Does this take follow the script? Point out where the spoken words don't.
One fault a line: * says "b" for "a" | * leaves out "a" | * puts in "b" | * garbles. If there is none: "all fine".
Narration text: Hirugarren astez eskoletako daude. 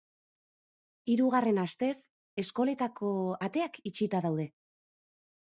* puts in "ateak itxita"